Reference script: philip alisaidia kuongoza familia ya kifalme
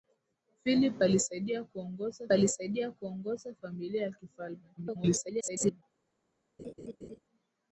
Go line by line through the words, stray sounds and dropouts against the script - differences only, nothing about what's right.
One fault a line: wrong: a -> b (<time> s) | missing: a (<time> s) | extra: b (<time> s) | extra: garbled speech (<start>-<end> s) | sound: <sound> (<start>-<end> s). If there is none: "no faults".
extra: alisaidia kuongoza (2.3 s)
extra: garbled speech (4.8-5.8 s)
sound: laugh (6.6-7.2 s)